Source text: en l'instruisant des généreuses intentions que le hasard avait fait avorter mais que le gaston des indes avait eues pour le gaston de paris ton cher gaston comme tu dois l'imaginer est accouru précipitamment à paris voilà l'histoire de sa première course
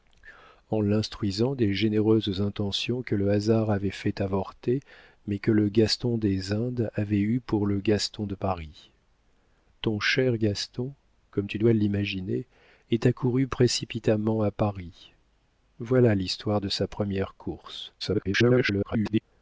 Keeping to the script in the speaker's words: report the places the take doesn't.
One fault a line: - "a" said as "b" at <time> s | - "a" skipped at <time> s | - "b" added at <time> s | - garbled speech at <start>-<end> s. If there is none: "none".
- garbled speech at 18.0-19.2 s